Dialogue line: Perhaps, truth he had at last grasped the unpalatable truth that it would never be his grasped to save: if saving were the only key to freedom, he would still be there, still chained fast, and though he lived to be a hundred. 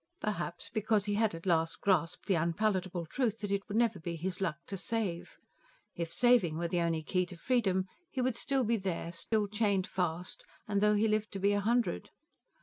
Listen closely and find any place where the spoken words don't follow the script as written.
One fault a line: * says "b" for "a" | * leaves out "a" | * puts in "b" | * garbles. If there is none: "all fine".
* says "because" for "truth"
* says "luck" for "grasped"